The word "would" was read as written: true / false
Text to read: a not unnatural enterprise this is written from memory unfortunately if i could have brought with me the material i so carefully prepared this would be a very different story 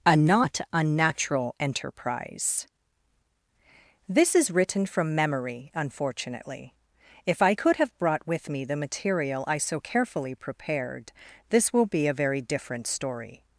false